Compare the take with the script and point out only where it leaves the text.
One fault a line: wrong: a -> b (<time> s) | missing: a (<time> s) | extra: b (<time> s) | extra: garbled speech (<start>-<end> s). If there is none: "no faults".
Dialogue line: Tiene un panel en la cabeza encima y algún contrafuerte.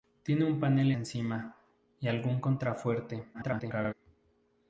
missing: en la cabeza (0.9 s)
extra: garbled speech (3.3-3.9 s)